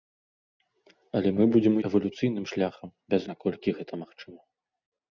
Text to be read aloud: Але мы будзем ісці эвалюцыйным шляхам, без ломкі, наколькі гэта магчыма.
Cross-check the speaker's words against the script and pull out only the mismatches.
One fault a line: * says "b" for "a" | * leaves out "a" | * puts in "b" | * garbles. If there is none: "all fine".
* leaves out "ісці"
* leaves out "ломкі"